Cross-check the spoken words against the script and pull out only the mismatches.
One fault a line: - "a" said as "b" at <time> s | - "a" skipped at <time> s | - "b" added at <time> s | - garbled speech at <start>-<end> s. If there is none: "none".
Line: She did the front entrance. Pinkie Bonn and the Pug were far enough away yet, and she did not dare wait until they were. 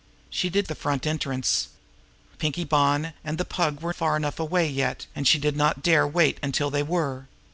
none